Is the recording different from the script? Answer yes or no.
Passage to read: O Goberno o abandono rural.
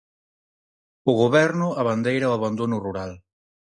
yes